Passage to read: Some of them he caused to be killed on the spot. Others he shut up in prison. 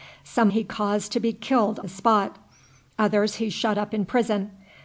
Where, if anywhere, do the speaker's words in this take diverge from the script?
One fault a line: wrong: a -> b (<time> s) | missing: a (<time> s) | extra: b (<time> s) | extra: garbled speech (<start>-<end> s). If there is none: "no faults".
missing: of them (0.5 s)
missing: on (1.8 s)